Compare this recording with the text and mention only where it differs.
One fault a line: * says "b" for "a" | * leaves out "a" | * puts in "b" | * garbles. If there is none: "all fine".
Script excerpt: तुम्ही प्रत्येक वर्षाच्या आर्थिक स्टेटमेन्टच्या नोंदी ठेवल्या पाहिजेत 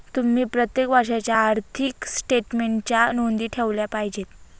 all fine